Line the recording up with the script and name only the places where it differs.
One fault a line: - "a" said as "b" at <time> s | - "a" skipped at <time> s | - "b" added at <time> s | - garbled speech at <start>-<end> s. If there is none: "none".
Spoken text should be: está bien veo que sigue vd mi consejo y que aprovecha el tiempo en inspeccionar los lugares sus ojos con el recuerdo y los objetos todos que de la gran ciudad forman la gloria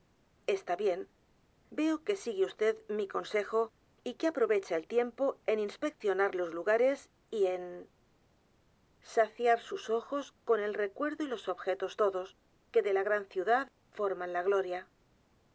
- "y en saciar" added at 7.3 s